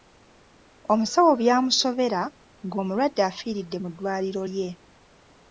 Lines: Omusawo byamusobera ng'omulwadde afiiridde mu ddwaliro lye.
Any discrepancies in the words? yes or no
no